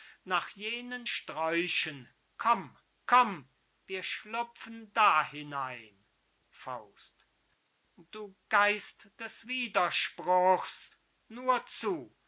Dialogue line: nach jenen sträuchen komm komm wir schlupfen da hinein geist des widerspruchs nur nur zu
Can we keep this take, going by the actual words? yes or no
no